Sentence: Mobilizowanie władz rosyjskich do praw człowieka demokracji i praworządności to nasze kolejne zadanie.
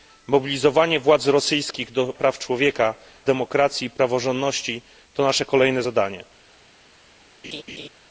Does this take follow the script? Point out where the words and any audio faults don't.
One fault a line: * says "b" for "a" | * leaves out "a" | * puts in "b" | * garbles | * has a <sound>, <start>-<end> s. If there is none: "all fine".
* has a laugh, 7.4-7.9 s